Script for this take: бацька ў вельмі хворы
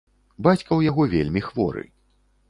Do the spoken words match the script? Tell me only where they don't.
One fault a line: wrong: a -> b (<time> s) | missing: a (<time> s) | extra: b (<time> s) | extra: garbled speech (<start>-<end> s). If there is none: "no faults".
extra: яго (0.9 s)